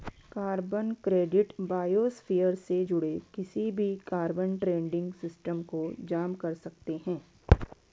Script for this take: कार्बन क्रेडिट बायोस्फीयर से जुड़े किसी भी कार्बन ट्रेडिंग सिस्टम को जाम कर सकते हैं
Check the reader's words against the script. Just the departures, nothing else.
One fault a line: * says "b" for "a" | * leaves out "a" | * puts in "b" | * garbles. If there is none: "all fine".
all fine